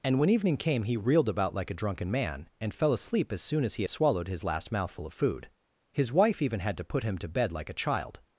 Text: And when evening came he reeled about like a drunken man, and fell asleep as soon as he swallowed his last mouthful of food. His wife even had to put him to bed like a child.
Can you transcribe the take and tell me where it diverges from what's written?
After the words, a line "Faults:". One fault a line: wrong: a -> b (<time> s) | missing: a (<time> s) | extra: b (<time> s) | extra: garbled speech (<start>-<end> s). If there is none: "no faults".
And when evening came he reeled about like a drunken man, and fell asleep as soon as he swallowed his last mouthful of food. His wife even had to put him to bed like a child.
Faults:
no faults